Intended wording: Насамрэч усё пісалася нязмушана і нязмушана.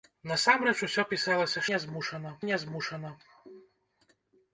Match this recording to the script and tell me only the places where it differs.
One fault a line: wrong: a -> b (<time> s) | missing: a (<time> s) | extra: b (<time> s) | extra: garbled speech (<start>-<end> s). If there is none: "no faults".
no faults